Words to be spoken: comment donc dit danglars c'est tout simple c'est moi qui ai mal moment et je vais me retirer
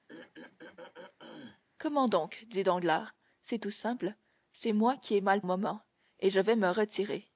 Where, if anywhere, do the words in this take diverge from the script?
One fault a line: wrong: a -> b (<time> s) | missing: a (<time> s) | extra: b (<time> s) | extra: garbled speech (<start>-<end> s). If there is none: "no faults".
no faults